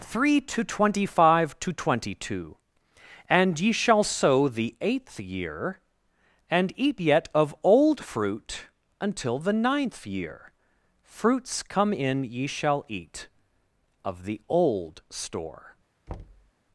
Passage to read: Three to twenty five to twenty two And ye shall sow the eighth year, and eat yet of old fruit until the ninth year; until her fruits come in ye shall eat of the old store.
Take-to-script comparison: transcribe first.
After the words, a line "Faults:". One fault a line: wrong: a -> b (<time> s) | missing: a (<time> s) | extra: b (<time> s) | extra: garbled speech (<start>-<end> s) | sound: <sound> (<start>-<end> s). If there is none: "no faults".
Three to twenty five to twenty two And ye shall sow the eighth year, and eat yet of old fruit until the ninth year; fruits come in ye shall eat of the old store.
Faults:
missing: until her (10.5 s)
sound: thud (16.1-16.5 s)